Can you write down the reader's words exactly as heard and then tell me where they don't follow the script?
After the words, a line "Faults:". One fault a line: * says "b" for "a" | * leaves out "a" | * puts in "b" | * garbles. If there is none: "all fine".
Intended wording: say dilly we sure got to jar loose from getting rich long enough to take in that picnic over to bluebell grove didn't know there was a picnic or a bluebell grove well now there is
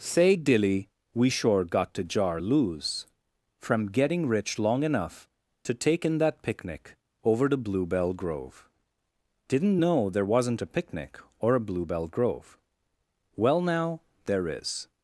say dilly we sure got to jar loose from getting rich long enough to take in that picnic over to bluebell grove didn't know there wasn't a picnic or a bluebell grove well now there is
Faults:
* says "wasn't" for "was"